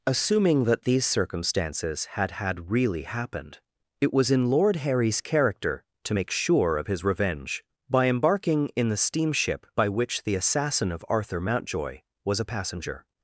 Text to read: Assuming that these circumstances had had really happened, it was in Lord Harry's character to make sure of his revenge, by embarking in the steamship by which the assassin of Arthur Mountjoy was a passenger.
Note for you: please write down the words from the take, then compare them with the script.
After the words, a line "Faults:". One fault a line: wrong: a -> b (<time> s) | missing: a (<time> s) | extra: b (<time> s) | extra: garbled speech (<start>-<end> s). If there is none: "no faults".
Assuming that these circumstances had had really happened, it was in Lord Harry's character to make sure of his revenge, by embarking in the steamship by which the assassin of Arthur Mountjoy was a passenger.
Faults:
no faults